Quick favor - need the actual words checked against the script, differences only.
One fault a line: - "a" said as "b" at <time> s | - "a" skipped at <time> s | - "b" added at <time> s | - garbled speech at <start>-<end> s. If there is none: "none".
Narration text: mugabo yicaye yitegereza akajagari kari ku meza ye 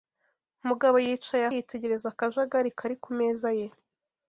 none